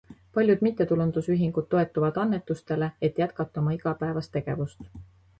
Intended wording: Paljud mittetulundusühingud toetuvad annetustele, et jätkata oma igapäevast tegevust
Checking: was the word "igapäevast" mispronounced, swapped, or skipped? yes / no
no